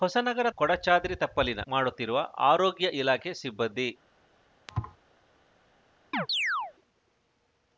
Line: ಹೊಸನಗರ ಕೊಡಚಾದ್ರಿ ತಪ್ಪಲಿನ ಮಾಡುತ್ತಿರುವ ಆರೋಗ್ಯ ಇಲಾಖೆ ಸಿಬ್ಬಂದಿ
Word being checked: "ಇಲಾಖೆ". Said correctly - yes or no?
yes